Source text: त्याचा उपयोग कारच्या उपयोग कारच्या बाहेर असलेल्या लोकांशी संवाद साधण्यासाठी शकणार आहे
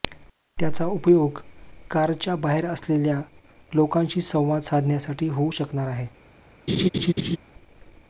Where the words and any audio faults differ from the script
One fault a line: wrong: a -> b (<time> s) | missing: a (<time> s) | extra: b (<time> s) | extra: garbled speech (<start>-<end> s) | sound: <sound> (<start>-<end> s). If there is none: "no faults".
missing: उपयोग कारच्या (2.4 s)
extra: होऊ (5.3 s)
sound: laugh (6.7-7.4 s)